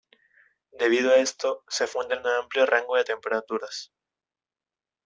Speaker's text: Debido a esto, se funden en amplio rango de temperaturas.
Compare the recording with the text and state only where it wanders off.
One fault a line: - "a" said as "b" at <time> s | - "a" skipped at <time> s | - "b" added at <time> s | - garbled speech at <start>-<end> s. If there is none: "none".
none